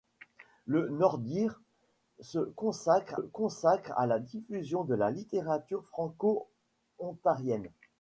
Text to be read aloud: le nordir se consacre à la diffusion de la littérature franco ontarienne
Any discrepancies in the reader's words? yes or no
yes